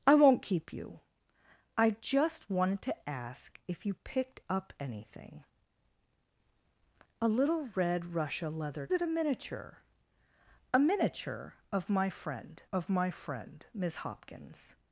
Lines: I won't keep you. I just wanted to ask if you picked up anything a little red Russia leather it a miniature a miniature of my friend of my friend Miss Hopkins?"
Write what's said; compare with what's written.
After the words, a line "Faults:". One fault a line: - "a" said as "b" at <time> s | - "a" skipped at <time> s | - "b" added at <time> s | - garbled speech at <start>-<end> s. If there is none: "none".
I won't keep you. I just wanted to ask if you picked up anything a little red Russia leather it a miniature a miniature of my friend of my friend Miss Hopkins?"
Faults:
none